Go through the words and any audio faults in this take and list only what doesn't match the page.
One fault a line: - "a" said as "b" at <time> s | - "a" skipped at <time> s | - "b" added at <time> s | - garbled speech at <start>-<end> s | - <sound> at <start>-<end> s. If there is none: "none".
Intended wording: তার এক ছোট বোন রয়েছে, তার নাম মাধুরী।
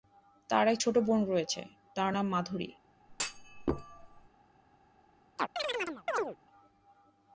- thud at 3.1-4.3 s
- chirp at 5.4-6.4 s